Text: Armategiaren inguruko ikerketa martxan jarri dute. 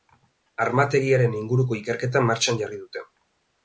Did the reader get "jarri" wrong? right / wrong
right